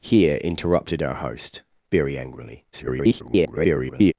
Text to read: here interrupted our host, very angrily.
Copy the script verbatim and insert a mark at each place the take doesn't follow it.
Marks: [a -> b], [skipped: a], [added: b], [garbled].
here interrupted our host, very angrily. [garbled]